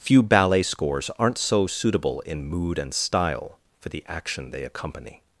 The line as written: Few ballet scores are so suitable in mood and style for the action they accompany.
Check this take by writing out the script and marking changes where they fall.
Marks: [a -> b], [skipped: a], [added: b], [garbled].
Few ballet scores [are -> aren't] so suitable in mood and style for the action they accompany.